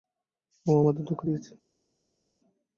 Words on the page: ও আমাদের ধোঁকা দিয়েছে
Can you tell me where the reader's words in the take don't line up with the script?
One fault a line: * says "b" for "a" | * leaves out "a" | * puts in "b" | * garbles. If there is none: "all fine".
all fine